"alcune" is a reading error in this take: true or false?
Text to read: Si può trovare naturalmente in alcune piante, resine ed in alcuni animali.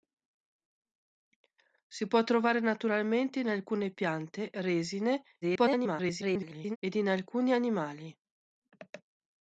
false